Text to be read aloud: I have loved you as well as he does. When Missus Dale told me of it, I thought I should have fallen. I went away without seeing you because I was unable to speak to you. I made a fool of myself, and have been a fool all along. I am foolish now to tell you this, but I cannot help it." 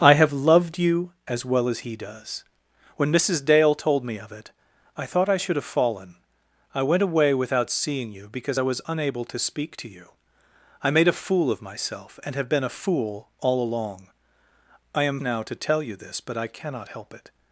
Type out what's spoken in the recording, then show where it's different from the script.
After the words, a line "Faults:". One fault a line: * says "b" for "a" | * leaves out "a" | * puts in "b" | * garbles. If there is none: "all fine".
I have loved you as well as he does. When Missus Dale told me of it, I thought I should have fallen. I went away without seeing you because I was unable to speak to you. I made a fool of myself, and have been a fool all along. I am now to tell you this, but I cannot help it."
Faults:
* leaves out "foolish"